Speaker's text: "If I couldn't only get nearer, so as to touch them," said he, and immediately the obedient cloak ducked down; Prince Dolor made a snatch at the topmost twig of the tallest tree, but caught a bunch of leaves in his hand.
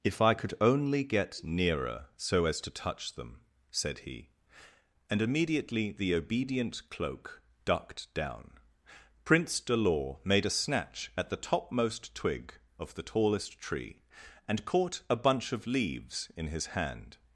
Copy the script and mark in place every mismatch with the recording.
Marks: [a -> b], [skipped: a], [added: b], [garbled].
"If I [couldn't -> could] only get nearer, so as to touch them," said he, and immediately the obedient cloak ducked down; Prince Dolor made a snatch at the topmost twig of the tallest tree, [but -> and] caught a bunch of leaves in his hand.